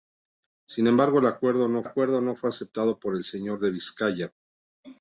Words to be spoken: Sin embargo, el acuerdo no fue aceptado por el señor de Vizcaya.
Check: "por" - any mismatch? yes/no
no